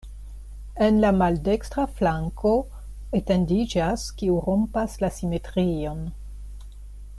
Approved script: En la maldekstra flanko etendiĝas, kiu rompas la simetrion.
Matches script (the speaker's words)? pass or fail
pass